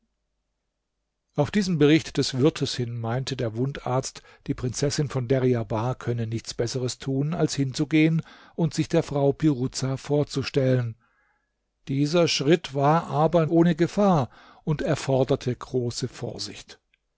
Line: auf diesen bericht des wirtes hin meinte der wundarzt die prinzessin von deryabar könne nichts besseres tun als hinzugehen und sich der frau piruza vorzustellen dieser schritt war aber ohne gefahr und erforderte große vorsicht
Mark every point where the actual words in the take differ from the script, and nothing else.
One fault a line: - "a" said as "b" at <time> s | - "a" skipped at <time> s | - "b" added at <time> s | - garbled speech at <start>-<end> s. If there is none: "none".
none